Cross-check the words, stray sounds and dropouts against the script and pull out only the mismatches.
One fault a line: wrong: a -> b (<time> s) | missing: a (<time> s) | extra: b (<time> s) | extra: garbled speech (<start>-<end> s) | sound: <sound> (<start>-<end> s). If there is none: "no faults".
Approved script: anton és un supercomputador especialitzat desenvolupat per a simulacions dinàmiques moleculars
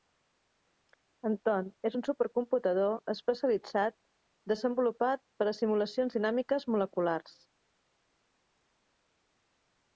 no faults